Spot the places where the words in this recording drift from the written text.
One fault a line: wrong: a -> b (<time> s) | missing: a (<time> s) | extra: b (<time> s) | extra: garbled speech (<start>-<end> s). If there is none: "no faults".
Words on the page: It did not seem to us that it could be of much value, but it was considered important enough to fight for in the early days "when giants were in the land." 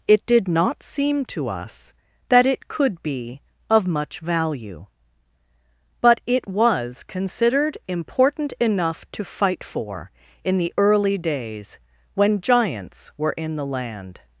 no faults